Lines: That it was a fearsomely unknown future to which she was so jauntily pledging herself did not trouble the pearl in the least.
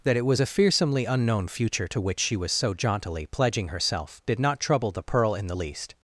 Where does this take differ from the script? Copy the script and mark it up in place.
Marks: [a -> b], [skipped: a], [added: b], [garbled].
That it was a fearsomely unknown future to which she was so jauntily pledging herself did not trouble the pearl in the least.